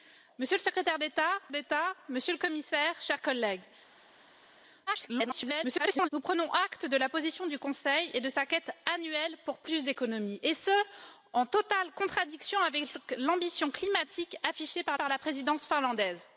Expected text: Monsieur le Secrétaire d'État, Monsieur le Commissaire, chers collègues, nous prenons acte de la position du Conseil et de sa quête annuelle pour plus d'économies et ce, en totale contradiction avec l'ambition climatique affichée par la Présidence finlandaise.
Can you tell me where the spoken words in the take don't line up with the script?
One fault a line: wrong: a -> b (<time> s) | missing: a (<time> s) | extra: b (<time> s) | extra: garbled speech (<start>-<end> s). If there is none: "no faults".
extra: d'État (1.5 s)
extra: garbled speech (4.9-6.1 s)
extra: par (15.0 s)